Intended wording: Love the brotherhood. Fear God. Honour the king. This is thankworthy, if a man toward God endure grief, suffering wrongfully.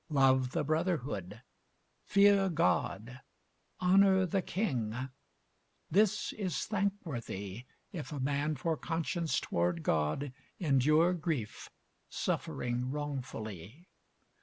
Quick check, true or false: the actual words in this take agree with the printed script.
false